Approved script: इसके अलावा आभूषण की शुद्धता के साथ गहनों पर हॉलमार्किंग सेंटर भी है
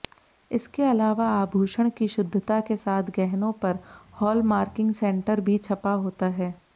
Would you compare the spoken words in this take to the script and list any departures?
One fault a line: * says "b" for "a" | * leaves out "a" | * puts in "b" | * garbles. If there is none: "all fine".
* puts in "छपा होता"